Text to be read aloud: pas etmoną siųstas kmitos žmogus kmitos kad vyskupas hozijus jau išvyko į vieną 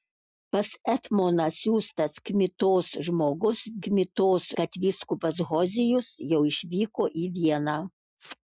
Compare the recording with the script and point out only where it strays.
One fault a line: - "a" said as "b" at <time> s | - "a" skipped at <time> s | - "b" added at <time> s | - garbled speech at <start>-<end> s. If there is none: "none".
none